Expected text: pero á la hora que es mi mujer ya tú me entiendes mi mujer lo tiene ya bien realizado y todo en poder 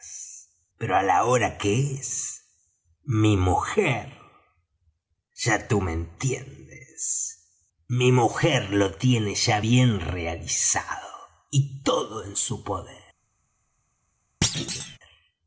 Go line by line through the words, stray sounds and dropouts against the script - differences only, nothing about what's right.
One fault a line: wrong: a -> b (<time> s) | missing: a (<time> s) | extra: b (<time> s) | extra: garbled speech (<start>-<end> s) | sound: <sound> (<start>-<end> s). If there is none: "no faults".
extra: su (12.4 s)
sound: thud (14.4-15.0 s)